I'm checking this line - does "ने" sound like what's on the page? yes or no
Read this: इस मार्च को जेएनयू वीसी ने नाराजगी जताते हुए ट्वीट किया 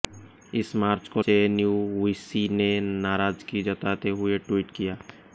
yes